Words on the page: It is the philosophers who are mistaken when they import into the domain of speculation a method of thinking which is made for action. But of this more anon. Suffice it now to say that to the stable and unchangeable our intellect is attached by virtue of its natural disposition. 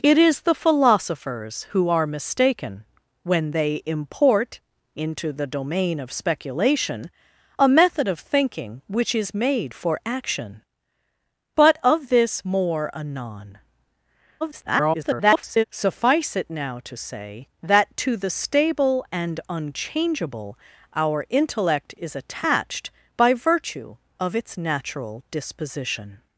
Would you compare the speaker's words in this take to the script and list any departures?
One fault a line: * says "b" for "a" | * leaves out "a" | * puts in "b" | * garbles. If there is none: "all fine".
* garbles